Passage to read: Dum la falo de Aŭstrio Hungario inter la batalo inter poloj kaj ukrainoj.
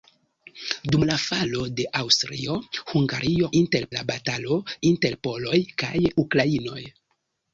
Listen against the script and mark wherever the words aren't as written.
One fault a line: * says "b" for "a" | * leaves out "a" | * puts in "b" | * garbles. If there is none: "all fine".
all fine